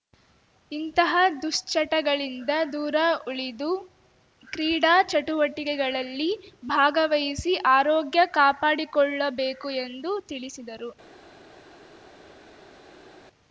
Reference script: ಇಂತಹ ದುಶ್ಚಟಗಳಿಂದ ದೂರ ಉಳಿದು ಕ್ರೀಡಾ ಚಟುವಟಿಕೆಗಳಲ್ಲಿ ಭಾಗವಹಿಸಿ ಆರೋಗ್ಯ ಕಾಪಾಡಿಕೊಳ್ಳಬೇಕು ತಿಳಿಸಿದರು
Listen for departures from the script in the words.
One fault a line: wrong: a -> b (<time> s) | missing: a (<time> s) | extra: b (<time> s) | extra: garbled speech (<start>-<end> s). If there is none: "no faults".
extra: ಎಂದು (9.8 s)